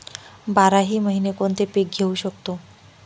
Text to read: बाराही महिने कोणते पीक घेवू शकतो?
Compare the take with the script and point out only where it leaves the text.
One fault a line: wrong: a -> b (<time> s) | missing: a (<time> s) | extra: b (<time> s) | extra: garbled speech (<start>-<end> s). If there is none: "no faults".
no faults